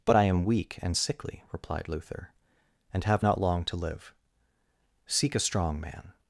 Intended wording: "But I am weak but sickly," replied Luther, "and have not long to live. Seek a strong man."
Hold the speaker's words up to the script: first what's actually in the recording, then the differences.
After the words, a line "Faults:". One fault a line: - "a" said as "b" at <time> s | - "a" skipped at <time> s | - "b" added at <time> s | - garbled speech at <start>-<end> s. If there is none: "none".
"But I am weak and sickly," replied Luther, "and have not long to live. Seek a strong man."
Faults:
- "but" said as "and" at 0.8 s